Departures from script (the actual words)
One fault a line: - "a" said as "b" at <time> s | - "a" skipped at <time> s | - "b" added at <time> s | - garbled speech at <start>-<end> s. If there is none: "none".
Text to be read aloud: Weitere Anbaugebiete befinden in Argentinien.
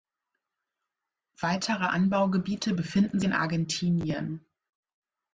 none